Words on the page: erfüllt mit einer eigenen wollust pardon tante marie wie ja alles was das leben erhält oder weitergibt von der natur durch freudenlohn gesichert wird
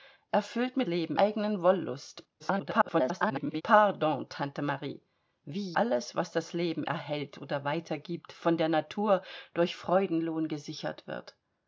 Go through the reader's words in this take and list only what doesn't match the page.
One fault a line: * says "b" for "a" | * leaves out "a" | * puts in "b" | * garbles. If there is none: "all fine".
* says "leben" for "einer"
* garbles
* leaves out "ja"